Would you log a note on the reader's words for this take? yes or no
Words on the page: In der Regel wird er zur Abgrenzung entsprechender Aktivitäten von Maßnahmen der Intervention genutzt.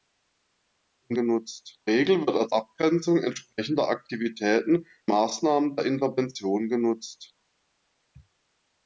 yes